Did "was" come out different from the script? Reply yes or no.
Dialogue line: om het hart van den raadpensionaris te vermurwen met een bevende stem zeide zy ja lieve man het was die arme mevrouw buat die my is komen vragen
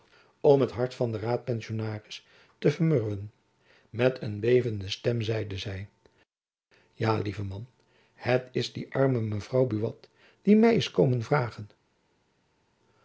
yes